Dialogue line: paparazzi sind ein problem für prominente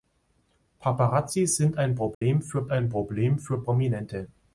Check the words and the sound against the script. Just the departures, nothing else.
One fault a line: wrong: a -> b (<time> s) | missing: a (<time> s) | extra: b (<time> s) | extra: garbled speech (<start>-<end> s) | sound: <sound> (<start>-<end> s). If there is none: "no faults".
sound: dropout (2.1-2.2 s)
extra: ein problem für (2.7 s)